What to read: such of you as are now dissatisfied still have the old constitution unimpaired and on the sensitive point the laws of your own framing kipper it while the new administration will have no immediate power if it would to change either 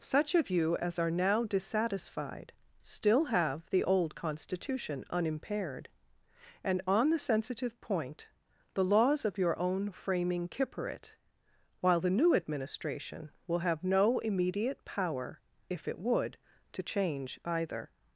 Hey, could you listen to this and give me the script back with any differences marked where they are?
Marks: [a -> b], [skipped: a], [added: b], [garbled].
such of you as are now dissatisfied still have the old constitution unimpaired and on the sensitive point the laws of your own framing kipper it while the new administration will have no immediate power if it would to change either